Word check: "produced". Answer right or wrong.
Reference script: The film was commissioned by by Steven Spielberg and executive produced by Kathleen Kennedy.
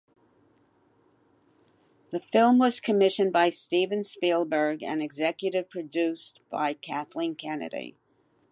right